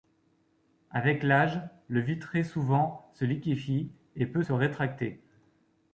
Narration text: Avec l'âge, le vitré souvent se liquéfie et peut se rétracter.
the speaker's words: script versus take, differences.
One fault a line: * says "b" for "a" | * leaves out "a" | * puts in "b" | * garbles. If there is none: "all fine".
all fine